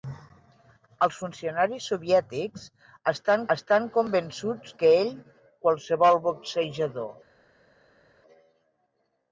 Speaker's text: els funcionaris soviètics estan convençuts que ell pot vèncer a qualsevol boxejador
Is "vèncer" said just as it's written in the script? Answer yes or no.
no